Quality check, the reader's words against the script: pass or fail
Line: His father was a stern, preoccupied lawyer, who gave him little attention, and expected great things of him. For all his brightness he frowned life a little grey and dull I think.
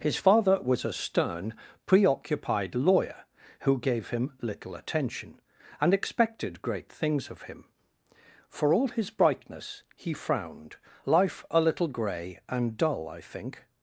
pass